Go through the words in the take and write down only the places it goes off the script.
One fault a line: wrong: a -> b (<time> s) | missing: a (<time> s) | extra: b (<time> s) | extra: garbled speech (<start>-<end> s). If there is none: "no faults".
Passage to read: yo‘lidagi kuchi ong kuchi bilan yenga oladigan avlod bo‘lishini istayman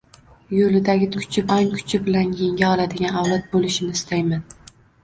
no faults